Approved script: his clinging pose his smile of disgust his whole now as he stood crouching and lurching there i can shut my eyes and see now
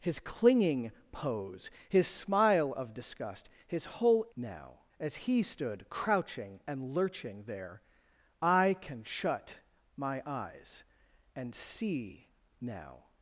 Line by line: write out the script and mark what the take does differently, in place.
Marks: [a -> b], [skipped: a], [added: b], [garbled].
his clinging pose his smile of disgust his whole now as he stood crouching and lurching there i can shut my eyes and see now